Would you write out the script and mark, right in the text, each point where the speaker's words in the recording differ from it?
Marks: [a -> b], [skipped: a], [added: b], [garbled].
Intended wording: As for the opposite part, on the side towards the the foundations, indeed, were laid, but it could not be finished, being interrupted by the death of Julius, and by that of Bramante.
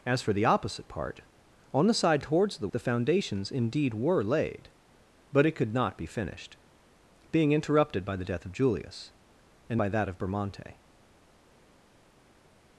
As for the opposite part, on the side towards the the foundations, indeed, were laid, but it could not be finished, being interrupted by the death of Julius, and by that of Bramante.